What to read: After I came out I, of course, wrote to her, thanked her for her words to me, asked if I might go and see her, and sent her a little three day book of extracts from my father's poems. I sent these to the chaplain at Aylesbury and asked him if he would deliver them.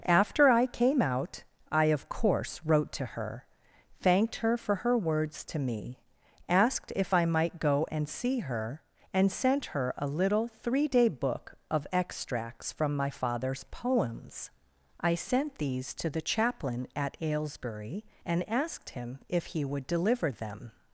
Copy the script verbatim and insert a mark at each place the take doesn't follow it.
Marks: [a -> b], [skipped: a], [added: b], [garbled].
After I came out I, of course, wrote to her, thanked her for her words to me, asked if I might go and see her, and sent her a little three day book of extracts from my father's poems. I sent these to the chaplain at Aylesbury and asked him if he would deliver them.